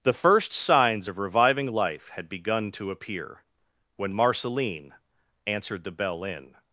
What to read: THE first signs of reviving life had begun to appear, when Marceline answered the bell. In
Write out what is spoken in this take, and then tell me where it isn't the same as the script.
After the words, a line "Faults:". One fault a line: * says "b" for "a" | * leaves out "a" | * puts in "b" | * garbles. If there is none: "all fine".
THE first signs of reviving life had begun to appear, when Marceline answered the bell. In
Faults:
all fine